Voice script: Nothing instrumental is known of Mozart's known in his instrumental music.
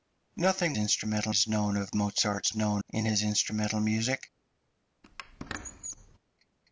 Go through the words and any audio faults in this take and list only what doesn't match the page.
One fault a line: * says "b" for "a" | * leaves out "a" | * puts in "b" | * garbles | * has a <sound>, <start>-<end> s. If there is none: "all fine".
* has a squeak, 5.0-6.2 s